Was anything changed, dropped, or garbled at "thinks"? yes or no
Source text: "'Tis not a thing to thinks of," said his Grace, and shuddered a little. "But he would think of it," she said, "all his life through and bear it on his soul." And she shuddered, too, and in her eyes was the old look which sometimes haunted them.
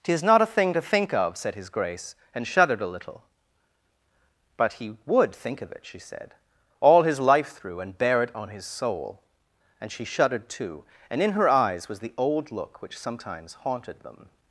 yes